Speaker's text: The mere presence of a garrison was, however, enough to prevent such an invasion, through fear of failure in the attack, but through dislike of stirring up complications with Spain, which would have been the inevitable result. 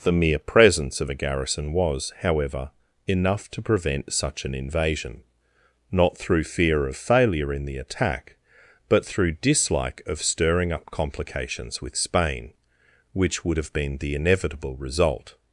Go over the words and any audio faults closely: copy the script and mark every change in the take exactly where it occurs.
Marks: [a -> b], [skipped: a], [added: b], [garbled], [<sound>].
The mere presence of a garrison was, however, enough to prevent such an invasion, [added: not] through fear of failure in the attack, but through dislike of stirring up complications with Spain, which would have been the inevitable result.